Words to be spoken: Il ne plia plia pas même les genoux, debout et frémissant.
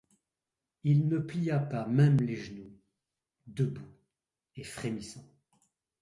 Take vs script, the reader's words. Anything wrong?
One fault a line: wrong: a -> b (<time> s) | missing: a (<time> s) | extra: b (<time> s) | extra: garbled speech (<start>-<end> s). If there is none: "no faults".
missing: plia (1.6 s)